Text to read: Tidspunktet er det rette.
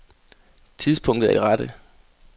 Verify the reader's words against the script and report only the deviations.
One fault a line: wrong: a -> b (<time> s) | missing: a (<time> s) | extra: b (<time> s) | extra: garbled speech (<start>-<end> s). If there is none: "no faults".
no faults